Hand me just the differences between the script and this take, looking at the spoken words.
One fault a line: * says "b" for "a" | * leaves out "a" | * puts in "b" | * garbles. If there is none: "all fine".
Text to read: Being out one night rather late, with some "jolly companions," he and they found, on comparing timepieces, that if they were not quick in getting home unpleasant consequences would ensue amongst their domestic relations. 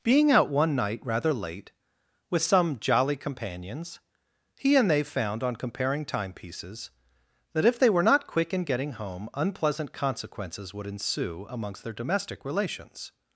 all fine